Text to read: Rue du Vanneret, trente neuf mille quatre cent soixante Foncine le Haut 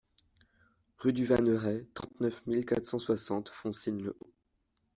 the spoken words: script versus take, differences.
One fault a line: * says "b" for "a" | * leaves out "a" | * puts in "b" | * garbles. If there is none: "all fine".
all fine